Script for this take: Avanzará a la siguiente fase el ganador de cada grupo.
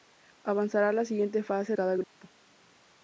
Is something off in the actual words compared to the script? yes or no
yes